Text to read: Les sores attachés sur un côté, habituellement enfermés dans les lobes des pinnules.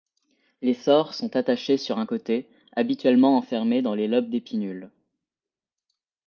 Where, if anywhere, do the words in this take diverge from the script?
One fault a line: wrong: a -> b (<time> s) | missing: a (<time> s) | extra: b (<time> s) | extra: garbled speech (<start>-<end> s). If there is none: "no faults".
extra: sont (1.1 s)